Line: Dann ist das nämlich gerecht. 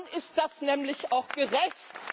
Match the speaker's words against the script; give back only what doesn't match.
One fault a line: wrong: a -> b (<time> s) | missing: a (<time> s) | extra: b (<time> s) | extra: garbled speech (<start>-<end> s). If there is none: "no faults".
extra: auch (1.1 s)